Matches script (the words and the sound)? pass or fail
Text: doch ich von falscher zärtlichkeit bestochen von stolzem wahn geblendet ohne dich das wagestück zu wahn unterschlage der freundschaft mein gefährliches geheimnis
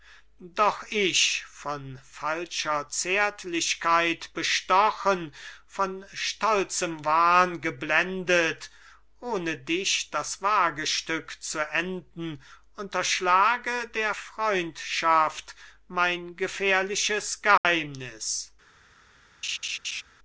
fail